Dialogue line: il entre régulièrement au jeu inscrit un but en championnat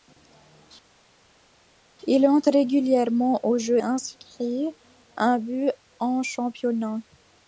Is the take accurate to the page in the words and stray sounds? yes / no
yes